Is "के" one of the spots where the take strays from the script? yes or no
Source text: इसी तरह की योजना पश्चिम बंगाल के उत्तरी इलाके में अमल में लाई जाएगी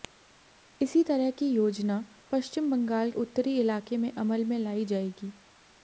yes